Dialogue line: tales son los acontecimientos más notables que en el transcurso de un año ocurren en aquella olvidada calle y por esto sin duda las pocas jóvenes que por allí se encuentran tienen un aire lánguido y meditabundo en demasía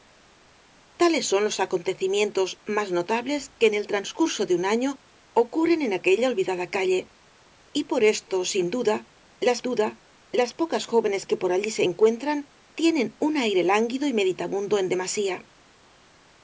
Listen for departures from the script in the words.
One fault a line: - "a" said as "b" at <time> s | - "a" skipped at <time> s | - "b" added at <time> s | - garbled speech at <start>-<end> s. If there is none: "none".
- "duda las" added at 9.6 s